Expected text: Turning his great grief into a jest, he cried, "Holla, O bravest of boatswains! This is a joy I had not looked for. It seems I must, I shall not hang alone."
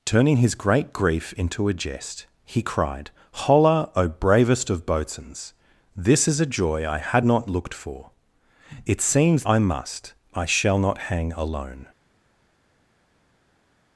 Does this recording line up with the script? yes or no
yes